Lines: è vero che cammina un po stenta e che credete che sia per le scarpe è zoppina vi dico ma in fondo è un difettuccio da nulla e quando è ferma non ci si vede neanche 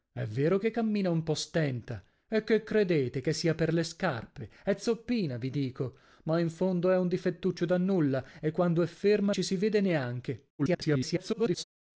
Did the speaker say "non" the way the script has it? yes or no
no